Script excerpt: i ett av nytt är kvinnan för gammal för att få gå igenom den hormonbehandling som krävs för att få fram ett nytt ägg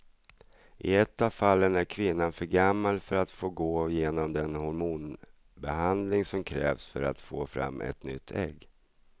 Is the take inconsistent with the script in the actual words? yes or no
yes